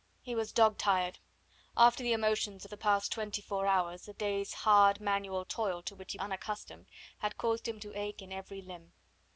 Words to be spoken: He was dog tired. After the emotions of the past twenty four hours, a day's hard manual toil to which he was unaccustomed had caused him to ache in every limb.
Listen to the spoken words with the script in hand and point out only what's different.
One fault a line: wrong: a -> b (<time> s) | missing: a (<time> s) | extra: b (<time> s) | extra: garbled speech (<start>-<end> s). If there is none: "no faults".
missing: was (6.2 s)